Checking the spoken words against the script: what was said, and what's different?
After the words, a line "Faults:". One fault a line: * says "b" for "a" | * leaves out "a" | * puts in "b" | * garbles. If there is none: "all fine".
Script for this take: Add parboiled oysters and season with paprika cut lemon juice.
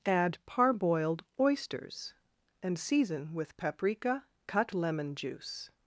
Add parboiled oysters and season with paprika cut lemon juice.
Faults:
all fine